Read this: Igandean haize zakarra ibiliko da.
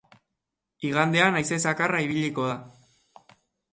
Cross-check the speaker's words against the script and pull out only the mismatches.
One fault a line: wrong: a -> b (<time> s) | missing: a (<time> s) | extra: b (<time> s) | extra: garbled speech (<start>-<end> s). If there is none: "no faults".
no faults